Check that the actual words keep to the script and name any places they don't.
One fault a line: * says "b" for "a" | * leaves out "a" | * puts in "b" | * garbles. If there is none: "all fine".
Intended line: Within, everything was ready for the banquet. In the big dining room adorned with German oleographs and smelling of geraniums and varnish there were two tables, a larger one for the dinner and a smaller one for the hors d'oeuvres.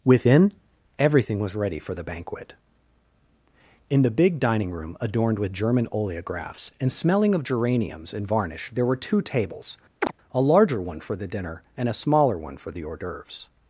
all fine